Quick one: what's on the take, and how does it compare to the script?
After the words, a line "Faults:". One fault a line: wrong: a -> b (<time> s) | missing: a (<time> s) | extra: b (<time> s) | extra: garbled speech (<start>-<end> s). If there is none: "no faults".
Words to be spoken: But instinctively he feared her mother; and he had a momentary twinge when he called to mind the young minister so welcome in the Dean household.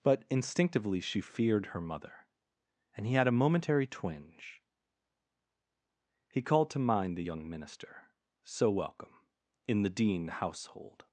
But instinctively she feared her mother; and he had a momentary twinge he called to mind the young minister so welcome in the Dean household.
Faults:
wrong: he -> she (1.0 s)
missing: when (4.6 s)